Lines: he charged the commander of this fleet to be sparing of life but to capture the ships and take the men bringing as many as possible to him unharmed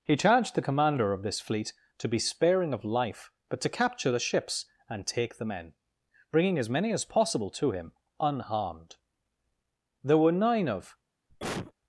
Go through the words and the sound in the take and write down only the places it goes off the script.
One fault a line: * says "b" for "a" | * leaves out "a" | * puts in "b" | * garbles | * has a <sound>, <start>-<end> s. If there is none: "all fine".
* puts in "there were nine of"
* has a cough, 11.3-11.7 s